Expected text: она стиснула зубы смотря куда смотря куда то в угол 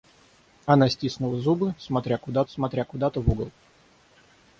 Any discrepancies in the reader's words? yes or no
no